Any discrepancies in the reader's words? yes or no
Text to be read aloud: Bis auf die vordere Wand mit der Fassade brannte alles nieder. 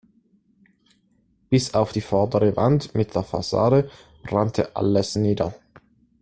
no